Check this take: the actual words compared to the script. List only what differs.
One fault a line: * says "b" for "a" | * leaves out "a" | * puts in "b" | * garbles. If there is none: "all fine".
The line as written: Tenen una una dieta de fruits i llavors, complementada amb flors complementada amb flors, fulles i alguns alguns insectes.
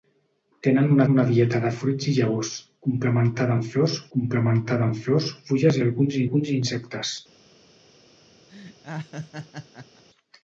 all fine